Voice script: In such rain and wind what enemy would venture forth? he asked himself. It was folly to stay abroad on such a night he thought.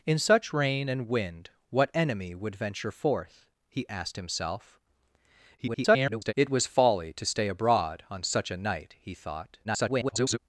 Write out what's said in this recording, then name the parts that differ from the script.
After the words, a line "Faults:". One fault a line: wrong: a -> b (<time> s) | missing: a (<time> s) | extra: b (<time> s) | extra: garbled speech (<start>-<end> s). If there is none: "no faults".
In such rain and wind what enemy would venture forth? he asked himself. [garbled] It was folly to stay abroad on such a night he thought. [garbled]
Faults:
extra: garbled speech (5.6-6.3 s)
extra: garbled speech (9.6-10.4 s)